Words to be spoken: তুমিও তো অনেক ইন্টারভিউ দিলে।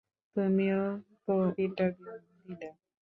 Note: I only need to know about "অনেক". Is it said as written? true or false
false